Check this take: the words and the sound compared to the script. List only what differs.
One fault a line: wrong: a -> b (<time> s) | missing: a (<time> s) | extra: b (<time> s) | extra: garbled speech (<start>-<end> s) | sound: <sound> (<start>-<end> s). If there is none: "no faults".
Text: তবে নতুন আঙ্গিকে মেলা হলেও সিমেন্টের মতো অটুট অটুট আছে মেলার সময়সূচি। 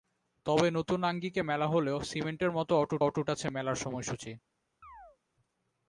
sound: chirp (4.8-5.2 s)